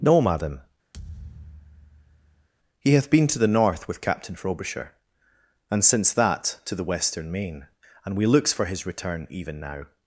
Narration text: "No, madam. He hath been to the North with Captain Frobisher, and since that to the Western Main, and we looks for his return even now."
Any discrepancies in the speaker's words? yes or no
no